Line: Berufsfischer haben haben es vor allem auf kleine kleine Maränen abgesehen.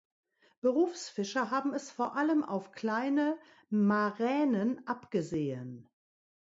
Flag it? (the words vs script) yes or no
yes